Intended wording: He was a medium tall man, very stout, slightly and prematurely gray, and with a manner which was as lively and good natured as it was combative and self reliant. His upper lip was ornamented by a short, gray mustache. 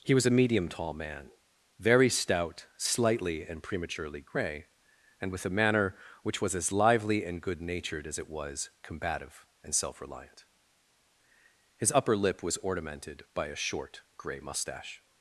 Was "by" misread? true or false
false